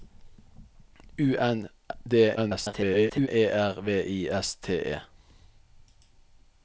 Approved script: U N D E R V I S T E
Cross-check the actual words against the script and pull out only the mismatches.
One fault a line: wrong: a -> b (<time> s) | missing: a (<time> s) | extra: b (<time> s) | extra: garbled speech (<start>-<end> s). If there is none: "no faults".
extra: garbled speech (2.4-3.3 s)